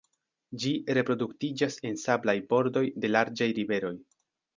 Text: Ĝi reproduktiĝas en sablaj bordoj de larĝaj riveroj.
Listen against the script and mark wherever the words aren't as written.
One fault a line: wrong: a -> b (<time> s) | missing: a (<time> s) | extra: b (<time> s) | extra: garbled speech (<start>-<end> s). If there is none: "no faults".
no faults